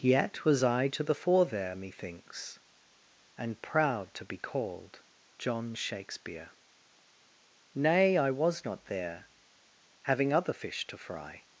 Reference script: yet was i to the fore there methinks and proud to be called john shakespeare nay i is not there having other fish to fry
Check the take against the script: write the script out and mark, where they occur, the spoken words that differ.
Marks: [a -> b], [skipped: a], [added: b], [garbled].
yet was i to the fore there methinks and proud to be called john shakespeare nay i [is -> was] not there having other fish to fry